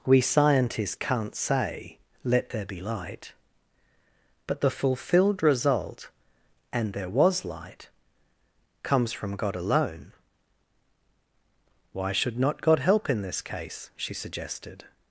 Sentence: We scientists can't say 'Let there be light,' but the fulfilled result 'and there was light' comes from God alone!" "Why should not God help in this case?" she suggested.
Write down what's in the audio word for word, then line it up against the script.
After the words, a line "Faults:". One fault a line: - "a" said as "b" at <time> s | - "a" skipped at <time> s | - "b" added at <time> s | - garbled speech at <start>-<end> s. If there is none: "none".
We scientists can't say 'Let there be light,' but the fulfilled result 'and there was light' comes from God alone!" "Why should not God help in this case?" she suggested.
Faults:
none